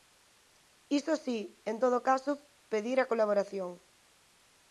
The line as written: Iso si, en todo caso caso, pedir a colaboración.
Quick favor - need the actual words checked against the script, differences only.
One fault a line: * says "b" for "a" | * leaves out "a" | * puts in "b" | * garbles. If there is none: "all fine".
* leaves out "caso"